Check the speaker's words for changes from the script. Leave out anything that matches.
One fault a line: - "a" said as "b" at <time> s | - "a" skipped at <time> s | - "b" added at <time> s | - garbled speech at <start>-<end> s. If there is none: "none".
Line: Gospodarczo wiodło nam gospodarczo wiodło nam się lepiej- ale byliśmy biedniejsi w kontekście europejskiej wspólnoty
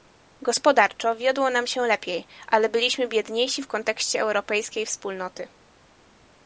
- "gospodarczo wiodło nam" skipped at 1.7 s